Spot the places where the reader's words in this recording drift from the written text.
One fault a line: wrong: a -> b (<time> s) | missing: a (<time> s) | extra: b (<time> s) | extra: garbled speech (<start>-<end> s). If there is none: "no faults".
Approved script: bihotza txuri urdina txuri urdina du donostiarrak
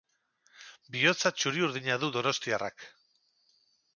missing: txuri urdina (2.0 s)